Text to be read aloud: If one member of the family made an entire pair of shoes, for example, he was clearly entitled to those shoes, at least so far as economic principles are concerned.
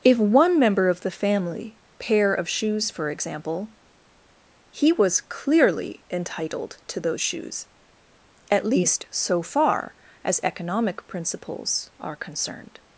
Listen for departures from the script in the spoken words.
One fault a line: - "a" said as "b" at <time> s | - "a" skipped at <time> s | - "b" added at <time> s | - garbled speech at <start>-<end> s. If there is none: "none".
- "made an entire" skipped at 1.8 s